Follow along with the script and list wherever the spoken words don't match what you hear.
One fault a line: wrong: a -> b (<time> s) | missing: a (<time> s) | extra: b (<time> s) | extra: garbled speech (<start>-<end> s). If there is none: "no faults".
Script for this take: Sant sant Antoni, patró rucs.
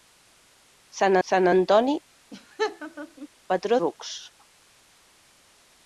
no faults